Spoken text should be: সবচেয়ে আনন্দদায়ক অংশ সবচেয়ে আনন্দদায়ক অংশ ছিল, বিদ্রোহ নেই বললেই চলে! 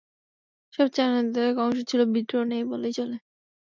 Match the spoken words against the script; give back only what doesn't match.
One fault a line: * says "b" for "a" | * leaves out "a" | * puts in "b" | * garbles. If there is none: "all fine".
* leaves out "সবচেয়ে আনন্দদায়ক অংশ"